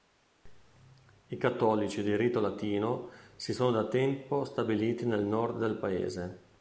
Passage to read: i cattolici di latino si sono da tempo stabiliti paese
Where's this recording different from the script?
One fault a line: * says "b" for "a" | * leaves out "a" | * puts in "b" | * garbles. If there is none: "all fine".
* puts in "rito"
* puts in "nel nord del"